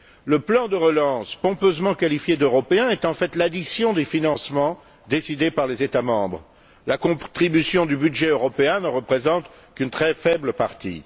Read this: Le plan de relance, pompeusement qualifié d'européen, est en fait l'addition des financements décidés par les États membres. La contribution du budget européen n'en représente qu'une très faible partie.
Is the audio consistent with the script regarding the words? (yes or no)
yes